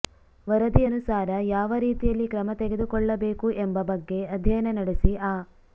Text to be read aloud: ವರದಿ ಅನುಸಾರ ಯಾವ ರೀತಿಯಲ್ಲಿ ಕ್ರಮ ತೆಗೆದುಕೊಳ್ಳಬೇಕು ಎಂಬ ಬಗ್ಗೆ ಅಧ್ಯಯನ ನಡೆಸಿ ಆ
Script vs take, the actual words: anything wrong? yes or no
no